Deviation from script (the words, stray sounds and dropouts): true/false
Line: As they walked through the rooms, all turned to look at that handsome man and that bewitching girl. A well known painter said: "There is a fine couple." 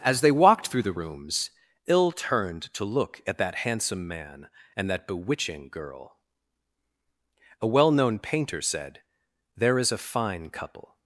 true